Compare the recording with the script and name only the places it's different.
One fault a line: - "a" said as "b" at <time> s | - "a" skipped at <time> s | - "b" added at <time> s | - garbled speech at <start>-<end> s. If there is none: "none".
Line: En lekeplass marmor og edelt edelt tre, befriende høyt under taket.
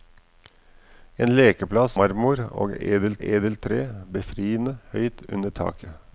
none